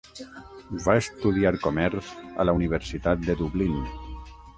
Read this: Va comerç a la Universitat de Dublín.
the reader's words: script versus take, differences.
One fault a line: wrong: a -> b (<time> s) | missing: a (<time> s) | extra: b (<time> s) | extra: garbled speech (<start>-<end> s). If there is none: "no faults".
extra: estudiar (1.0 s)